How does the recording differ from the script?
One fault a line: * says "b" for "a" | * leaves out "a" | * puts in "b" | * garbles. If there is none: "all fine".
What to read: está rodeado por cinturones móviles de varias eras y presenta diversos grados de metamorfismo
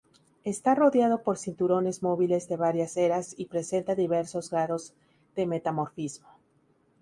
all fine